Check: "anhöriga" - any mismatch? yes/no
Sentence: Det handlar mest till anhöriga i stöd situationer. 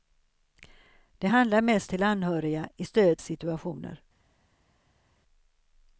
no